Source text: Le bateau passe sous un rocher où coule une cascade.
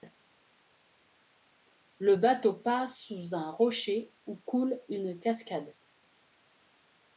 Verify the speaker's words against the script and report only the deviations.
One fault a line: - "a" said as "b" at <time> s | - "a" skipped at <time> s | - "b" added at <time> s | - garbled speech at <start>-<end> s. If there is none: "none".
none